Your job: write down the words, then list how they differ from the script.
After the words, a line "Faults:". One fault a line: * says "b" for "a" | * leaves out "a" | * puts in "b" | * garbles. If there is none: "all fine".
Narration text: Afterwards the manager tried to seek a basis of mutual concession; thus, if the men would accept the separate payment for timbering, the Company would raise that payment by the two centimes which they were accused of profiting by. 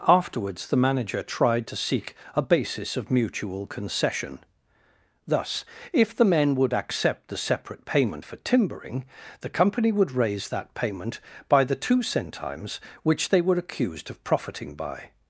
Afterwards the manager tried to seek a basis of mutual concession; thus, if the men would accept the separate payment for timbering, the Company would raise that payment by the two centimes which they were accused of profiting by.
Faults:
all fine